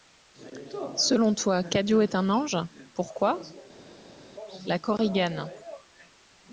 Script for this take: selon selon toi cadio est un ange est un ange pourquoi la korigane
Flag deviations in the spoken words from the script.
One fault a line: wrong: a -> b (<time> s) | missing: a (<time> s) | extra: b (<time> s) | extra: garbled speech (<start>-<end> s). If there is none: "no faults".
missing: selon (1.4 s)
missing: est un ange (2.6 s)